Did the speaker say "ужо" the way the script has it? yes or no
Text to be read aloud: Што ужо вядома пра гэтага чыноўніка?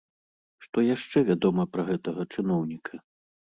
no